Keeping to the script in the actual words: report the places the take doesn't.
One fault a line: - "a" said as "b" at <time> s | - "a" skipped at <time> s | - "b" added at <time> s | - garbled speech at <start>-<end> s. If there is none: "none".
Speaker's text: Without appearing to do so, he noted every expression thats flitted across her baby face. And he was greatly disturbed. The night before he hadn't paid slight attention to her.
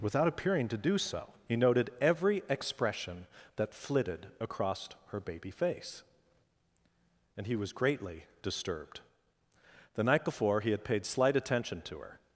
- "thats" said as "that" at 3.5 s
- "hadn't" said as "had" at 10.7 s